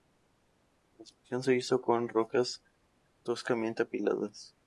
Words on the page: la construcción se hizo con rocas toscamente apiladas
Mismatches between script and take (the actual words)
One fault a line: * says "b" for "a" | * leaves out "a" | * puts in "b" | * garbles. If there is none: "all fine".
all fine